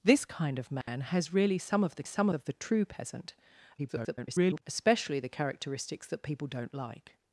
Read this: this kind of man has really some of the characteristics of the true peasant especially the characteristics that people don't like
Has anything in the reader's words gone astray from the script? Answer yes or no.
yes